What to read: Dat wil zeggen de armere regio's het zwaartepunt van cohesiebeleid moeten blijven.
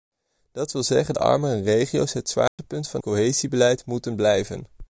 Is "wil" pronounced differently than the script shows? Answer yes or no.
no